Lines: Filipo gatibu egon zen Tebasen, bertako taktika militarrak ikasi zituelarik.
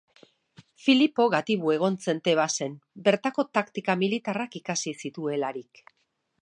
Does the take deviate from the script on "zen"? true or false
false